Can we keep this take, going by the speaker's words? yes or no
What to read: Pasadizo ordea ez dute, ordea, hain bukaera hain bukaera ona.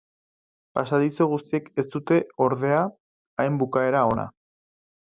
no